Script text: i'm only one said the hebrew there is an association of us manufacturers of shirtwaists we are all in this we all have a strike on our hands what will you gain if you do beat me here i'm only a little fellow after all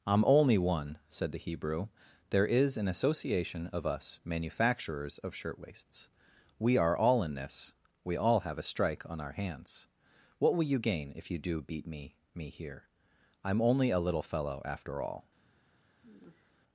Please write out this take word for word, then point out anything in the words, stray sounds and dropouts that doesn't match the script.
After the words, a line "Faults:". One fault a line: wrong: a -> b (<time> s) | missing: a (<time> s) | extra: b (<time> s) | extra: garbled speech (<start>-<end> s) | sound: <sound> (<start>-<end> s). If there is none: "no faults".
i'm only one said the hebrew there is an association of us manufacturers of shirtwaists we are all in this we all have a strike on our hands what will you gain if you do beat me me here i'm only a little fellow after all
Faults:
extra: me (12.3 s)
sound: sigh (16.0-16.5 s)